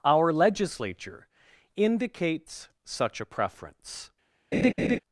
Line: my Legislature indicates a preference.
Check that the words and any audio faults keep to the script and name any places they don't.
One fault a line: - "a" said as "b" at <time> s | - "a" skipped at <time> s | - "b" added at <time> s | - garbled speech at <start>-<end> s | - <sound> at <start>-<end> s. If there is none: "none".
- "my" said as "our" at 0.0 s
- "such" added at 2.8 s
- laugh at 4.5-5.0 s